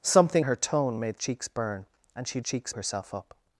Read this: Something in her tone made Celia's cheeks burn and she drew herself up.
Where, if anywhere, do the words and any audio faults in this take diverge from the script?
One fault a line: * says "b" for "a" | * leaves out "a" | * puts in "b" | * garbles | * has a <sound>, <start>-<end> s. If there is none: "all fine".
* leaves out "in"
* leaves out "Celia's"
* says "cheeks" for "drew"